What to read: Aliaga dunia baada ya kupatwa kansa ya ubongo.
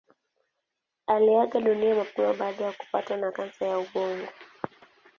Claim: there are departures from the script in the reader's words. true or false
true